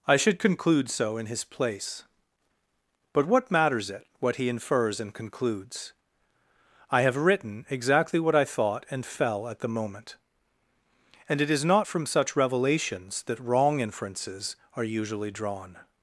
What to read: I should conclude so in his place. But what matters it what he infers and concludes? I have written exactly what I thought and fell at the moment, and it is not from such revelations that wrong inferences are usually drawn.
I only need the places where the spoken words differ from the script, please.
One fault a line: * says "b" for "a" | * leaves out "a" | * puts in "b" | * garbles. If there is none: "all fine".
all fine